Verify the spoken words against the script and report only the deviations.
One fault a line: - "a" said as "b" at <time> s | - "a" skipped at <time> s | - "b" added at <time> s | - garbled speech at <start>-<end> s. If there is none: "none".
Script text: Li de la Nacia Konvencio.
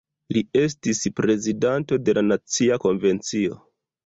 - "estis prezidanto" added at 0.6 s